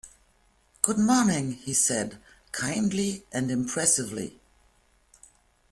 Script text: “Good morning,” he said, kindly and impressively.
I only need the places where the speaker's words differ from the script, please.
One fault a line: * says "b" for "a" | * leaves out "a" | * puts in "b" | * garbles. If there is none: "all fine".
all fine